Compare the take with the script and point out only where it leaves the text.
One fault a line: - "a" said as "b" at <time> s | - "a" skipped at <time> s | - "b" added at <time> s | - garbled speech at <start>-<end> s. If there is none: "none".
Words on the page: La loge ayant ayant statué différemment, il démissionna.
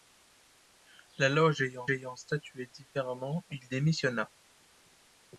none